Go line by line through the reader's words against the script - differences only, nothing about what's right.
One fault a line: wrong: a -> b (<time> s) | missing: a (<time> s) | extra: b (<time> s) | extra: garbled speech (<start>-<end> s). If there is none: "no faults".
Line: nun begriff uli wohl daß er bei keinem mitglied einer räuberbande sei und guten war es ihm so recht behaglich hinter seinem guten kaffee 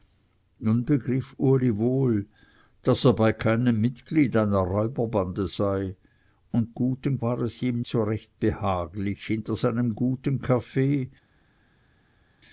no faults